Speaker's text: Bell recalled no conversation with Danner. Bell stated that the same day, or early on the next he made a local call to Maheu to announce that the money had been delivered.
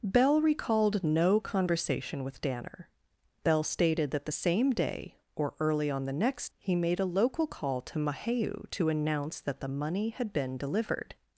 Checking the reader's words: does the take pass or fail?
pass